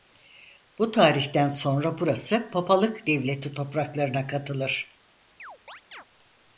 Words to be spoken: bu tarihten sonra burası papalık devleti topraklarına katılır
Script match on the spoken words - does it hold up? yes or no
yes